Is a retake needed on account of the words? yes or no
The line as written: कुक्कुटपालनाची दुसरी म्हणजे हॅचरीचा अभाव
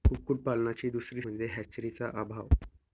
no